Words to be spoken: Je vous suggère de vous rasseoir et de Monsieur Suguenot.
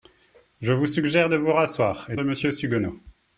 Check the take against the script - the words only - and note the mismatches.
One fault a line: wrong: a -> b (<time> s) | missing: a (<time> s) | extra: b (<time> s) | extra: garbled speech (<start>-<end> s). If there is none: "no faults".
no faults